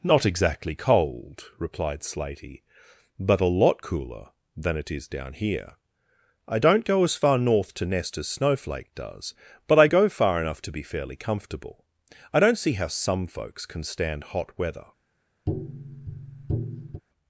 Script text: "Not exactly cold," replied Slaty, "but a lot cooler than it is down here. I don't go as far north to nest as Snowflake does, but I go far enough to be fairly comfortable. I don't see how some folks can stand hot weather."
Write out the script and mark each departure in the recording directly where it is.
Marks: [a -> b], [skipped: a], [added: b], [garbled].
"Not exactly cold," replied Slaty, "but a lot cooler than it is down here. I don't go as far north to nest as Snowflake does, but I go far enough to be fairly comfortable. I don't see how some folks can stand hot weather."